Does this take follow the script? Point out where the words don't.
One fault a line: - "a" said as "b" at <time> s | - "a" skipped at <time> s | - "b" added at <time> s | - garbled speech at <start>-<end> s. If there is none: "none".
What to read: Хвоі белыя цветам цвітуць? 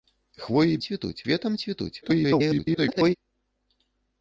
- "белыя" said as "цвітуць" at 0.9 s
- garbled speech at 2.0-3.1 s